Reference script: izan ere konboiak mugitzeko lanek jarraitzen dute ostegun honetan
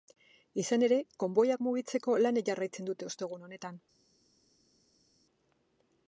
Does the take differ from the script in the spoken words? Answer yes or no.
no